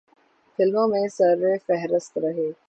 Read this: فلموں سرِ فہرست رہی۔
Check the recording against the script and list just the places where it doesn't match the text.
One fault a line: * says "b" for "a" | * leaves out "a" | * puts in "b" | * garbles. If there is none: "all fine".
* puts in "میں"